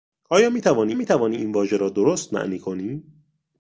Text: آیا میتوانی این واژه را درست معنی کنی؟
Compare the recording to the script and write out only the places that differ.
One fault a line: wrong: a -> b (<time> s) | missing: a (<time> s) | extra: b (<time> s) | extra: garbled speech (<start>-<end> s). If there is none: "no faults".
extra: میتوانی (0.9 s)